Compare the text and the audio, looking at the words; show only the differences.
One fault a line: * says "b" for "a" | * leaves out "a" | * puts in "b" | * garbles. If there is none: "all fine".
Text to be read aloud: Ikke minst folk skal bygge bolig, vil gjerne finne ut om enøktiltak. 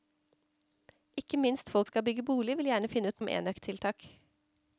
all fine